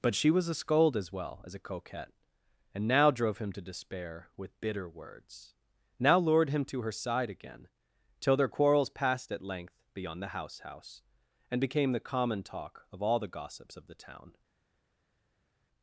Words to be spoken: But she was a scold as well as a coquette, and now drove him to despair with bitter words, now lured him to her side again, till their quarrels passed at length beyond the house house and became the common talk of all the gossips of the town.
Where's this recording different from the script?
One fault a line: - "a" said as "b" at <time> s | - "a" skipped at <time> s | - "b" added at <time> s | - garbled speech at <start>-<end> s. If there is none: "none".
none